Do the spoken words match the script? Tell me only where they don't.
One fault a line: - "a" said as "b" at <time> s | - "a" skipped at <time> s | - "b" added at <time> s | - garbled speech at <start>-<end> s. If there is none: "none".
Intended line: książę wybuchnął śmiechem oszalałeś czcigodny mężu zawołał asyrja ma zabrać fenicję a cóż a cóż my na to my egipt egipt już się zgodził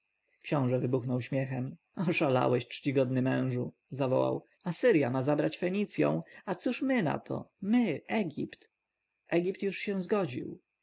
- "a cóż" skipped at 6.8 s